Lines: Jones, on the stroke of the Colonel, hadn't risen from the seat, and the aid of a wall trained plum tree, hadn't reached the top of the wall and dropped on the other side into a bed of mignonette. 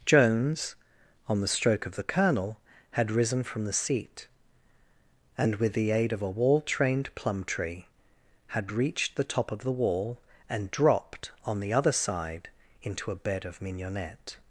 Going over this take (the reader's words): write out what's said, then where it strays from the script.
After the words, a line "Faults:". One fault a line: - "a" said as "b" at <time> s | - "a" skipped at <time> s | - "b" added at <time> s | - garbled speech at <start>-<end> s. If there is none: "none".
Jones, on the stroke of the Colonel, had risen from the seat, and with the aid of a wall trained plum tree, had reached the top of the wall and dropped on the other side into a bed of mignonette.
Faults:
- "hadn't" said as "had" at 2.9 s
- "with" added at 5.5 s
- "hadn't" said as "had" at 8.5 s